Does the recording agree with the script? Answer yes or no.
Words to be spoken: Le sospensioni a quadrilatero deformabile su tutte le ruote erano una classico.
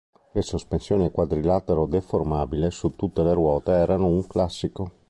no